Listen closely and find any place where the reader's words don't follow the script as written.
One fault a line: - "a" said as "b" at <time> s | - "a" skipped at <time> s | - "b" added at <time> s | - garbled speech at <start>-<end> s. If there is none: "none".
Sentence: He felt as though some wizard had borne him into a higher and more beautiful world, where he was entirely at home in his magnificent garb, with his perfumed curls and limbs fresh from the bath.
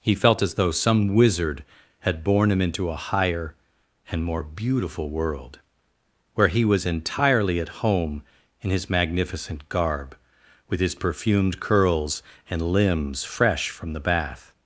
none